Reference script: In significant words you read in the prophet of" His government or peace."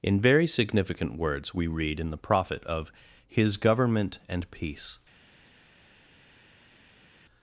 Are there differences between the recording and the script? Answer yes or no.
yes